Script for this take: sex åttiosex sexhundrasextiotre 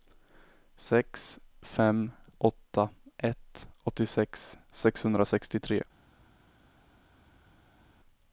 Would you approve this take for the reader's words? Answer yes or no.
no